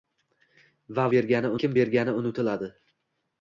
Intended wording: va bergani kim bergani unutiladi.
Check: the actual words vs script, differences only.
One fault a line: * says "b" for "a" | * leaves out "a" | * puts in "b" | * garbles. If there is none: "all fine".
all fine